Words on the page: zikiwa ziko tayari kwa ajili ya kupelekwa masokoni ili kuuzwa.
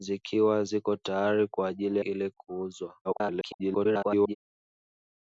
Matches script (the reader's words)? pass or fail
fail